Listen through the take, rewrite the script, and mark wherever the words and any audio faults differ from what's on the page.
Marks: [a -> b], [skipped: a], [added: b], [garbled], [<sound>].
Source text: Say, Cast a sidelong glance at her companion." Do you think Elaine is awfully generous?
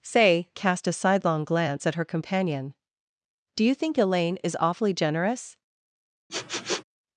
Say, Cast a sidelong glance at her companion." Do you think Elaine is awfully generous? [sniff]